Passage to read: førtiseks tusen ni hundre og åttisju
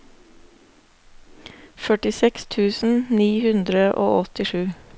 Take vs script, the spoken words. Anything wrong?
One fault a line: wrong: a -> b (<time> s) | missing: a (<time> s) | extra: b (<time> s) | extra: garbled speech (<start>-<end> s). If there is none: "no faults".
no faults